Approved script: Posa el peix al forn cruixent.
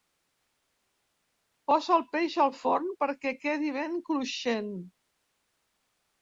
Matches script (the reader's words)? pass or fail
fail